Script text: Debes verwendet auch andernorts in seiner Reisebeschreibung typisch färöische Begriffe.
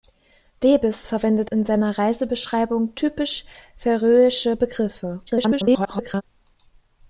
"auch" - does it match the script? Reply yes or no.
no